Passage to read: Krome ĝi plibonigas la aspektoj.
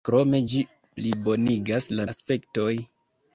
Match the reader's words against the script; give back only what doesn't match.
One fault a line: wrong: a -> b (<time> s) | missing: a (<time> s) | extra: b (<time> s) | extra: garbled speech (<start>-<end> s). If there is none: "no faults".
no faults